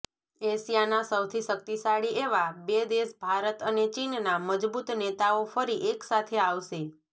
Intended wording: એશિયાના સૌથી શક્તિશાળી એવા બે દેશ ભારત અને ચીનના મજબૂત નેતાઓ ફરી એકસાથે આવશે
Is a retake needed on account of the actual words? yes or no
no